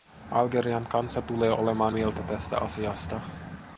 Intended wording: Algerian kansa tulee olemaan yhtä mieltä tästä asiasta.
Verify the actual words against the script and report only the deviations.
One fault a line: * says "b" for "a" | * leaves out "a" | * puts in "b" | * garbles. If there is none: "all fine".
* leaves out "yhtä"